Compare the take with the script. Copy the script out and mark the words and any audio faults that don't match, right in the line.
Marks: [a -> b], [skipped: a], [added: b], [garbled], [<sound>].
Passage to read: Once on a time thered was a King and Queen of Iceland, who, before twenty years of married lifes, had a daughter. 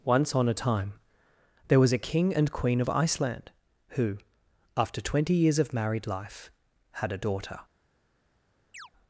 Once on a time [thered -> there] was a King and Queen of Iceland, who, [before -> after] twenty years of married [lifes, -> life] had a daughter. [chirp]